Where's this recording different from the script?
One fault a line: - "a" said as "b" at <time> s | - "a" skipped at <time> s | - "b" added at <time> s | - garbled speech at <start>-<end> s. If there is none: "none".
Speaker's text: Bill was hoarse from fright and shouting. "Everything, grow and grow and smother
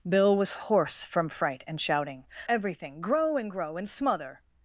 none